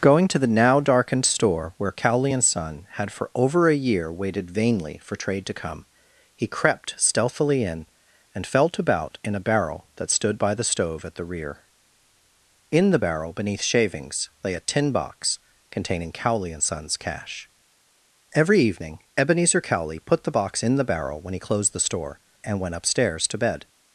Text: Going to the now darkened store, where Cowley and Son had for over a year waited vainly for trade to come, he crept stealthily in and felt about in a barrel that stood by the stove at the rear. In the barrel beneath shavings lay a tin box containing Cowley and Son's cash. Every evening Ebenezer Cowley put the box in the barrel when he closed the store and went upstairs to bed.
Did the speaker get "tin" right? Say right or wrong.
right